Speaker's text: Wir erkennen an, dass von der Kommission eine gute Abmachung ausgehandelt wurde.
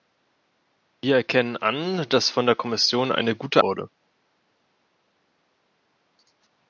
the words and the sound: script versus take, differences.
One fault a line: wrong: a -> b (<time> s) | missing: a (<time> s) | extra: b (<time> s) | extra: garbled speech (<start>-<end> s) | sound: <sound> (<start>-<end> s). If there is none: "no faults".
missing: Abmachung ausgehandelt (3.6 s)